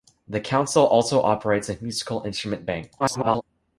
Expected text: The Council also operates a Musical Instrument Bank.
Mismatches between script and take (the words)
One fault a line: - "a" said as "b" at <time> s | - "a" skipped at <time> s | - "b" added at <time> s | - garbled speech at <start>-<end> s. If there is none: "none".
- garbled speech at 3.0-3.4 s